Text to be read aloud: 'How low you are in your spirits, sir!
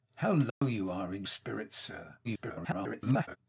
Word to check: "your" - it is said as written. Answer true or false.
false